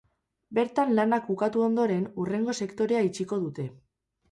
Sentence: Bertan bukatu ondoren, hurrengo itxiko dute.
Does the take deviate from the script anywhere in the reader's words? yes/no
yes